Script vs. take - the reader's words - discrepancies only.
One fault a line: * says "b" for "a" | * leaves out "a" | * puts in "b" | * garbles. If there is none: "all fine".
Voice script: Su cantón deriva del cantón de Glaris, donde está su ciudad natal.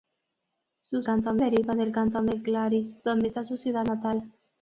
all fine